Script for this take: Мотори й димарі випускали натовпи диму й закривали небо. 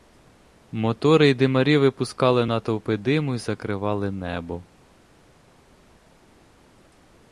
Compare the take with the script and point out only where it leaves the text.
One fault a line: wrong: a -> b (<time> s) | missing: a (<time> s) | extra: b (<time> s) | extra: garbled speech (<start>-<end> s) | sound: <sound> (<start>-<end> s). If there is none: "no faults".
no faults